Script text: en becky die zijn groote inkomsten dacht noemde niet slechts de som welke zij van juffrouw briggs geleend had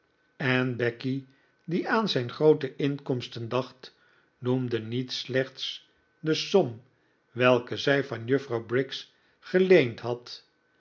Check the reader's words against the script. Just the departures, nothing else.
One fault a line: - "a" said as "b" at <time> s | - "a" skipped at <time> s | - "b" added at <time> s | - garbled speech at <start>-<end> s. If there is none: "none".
- "aan" added at 1.9 s